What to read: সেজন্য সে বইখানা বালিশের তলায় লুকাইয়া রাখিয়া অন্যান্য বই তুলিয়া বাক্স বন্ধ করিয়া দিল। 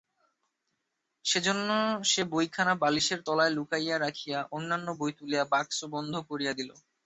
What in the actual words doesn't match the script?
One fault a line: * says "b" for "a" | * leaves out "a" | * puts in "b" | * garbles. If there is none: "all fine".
all fine